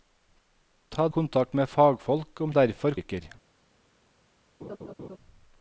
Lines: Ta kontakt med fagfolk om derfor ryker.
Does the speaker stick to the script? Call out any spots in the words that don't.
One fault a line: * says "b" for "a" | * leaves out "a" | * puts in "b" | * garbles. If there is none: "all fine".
all fine